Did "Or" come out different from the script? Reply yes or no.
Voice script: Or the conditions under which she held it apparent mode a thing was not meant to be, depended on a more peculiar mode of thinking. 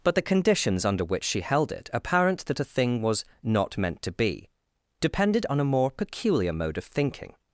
yes